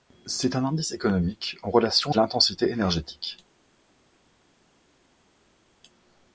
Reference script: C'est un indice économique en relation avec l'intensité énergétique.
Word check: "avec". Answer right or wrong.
wrong